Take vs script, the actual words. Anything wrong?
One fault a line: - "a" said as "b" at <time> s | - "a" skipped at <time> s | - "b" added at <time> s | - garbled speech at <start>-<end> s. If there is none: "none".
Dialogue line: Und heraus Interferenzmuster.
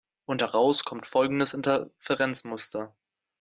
- "kommt folgendes" added at 0.8 s